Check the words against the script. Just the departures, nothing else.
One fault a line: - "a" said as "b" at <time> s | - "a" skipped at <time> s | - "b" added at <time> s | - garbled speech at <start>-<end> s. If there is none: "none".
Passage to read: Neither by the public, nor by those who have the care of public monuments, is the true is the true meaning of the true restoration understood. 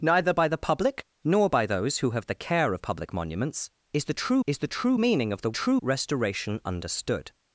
none